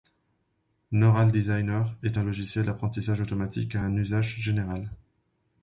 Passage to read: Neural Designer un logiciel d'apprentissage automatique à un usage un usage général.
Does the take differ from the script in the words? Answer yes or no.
yes